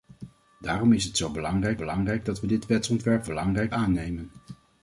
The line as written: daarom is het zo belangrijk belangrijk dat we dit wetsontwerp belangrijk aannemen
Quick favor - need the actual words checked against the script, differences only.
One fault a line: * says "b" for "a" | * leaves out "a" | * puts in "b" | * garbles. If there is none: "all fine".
all fine